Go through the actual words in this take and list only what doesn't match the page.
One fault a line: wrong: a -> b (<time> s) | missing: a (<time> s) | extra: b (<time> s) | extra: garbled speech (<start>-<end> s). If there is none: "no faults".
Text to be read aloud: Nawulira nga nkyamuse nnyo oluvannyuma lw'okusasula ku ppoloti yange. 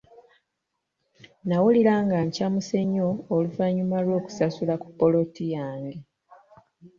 no faults